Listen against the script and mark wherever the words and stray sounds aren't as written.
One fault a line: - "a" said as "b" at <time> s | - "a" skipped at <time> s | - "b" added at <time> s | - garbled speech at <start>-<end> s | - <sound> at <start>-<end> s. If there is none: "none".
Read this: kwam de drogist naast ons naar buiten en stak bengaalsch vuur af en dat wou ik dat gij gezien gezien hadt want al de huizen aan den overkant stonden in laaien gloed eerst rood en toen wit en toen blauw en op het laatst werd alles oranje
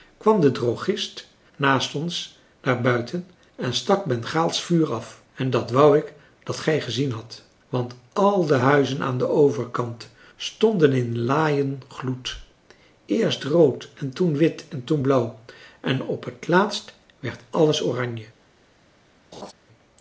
- "gezien" skipped at 7.1 s
- laugh at 19.3-19.5 s